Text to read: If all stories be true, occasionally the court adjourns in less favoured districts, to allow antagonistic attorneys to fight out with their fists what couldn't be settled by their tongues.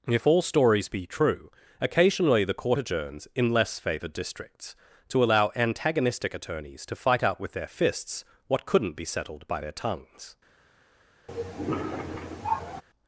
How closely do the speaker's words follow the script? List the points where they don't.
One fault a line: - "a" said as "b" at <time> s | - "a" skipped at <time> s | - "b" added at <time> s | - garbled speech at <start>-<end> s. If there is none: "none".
none